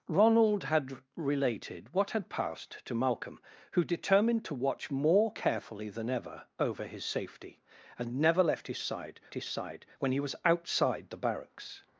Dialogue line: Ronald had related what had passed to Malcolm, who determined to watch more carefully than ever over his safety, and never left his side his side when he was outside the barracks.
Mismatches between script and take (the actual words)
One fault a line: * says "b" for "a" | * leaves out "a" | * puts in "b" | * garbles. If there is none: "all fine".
all fine